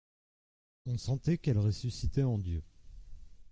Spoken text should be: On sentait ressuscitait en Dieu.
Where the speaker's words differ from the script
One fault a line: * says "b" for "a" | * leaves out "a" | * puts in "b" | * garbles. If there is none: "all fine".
* puts in "qu'elle"